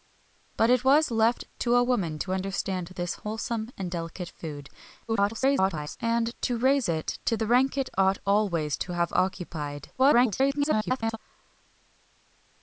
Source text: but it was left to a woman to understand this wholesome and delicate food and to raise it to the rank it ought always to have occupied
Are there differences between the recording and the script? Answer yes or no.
yes